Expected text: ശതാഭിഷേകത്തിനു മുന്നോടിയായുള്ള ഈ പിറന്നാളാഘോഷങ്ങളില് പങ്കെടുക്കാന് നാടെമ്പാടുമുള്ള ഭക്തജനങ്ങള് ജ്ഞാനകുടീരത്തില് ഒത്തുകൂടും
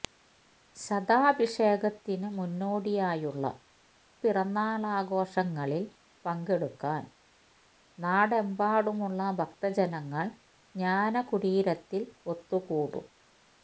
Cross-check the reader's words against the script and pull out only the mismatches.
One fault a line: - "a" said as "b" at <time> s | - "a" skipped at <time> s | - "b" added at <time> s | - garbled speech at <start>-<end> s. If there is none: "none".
- "ഈ" skipped at 3.5 s